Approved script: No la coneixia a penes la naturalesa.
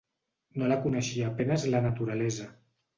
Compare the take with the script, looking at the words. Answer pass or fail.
pass